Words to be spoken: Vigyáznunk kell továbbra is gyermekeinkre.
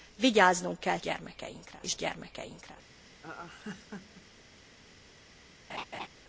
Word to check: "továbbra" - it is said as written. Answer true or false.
false